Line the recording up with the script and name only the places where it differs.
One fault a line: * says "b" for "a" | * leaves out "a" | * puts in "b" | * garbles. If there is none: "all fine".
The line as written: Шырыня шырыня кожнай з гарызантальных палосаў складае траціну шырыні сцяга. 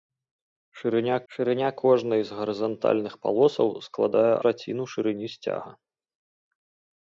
all fine